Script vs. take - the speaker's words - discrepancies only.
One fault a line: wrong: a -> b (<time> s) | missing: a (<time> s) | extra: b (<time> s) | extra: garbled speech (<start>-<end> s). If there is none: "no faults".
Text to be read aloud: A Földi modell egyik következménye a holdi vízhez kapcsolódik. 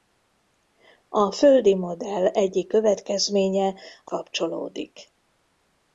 missing: holdi vízhez (4.1 s)